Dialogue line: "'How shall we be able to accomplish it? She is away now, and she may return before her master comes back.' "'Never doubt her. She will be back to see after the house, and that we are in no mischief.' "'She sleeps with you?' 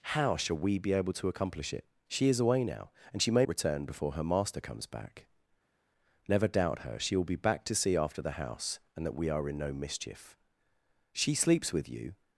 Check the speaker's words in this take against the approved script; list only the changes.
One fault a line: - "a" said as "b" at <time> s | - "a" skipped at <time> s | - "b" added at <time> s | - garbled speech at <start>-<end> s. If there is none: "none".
none